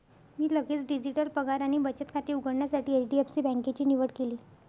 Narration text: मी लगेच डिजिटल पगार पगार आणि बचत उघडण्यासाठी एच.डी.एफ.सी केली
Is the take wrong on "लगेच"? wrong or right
right